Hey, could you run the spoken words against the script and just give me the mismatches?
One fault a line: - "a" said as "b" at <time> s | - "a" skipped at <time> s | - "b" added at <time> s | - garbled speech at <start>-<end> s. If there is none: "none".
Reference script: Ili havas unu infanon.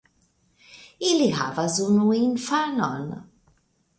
none